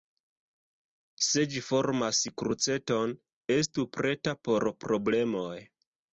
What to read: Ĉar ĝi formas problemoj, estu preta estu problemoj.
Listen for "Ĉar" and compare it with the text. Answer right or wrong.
wrong